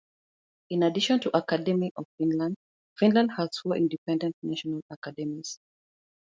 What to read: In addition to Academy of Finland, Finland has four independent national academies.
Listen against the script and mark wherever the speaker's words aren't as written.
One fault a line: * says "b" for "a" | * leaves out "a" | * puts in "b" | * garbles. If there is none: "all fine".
all fine